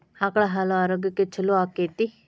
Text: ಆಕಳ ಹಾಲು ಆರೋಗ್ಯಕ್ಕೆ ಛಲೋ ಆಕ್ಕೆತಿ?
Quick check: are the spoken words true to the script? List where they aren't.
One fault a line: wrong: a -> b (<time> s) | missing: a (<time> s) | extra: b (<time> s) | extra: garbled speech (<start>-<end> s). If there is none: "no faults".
no faults